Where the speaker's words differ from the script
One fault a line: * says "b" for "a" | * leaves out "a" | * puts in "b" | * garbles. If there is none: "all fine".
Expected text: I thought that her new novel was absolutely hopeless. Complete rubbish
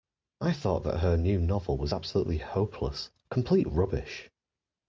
all fine